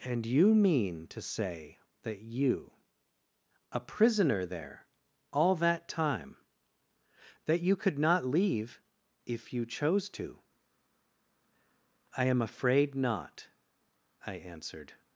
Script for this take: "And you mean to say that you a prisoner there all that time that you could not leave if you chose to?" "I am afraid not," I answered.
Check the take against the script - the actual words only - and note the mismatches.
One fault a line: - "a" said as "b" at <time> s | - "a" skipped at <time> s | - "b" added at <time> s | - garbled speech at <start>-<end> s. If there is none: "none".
none